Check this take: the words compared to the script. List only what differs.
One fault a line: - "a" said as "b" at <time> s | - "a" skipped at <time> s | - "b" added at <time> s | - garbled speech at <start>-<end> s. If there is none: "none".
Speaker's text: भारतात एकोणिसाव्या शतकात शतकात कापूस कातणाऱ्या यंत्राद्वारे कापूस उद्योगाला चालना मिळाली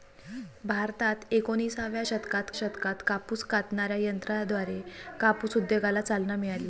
none